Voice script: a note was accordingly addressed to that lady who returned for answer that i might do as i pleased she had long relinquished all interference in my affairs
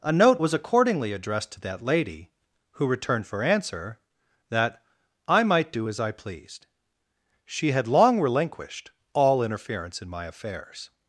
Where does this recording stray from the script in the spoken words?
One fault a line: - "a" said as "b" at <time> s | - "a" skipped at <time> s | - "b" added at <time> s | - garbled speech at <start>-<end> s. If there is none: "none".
none